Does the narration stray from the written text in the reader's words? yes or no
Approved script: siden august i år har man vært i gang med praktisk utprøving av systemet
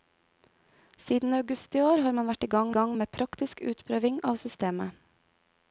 yes